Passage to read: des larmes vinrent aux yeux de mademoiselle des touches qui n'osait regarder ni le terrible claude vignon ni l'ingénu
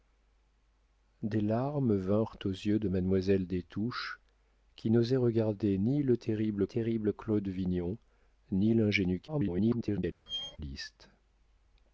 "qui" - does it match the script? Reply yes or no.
yes